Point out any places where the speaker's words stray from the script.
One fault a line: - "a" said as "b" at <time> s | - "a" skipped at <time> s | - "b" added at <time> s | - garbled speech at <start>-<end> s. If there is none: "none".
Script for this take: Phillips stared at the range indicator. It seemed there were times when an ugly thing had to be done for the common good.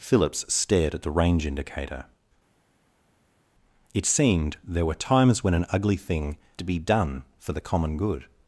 - "had" skipped at 6.4 s